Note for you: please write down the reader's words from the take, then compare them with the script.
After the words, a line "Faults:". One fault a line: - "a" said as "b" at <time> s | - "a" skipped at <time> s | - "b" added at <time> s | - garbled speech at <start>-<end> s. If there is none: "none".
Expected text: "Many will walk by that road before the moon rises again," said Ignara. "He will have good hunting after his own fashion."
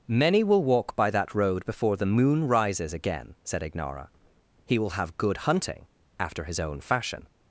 "Many will walk by that road before the moon rises again," said Ignara. "He will have good hunting after his own fashion."
Faults:
none